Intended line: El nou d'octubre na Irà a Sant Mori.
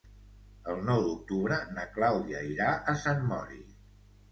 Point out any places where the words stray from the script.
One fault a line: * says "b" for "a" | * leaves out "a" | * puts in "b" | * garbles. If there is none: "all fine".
* puts in "Clàudia"